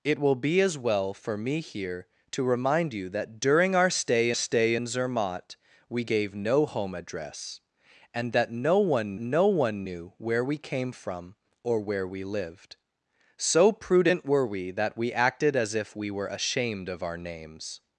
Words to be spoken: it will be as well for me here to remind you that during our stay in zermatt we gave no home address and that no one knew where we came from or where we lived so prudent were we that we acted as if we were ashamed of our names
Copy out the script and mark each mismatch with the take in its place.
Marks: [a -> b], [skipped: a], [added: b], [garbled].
it will be as well for me here to remind you that during our stay [added: stay] in zermatt we gave no home address and that no one [added: no one] knew where we came from or where we lived so prudent were we that we acted as if we were ashamed of our names